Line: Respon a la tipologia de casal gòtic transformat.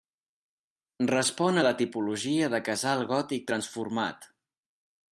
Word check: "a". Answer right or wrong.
right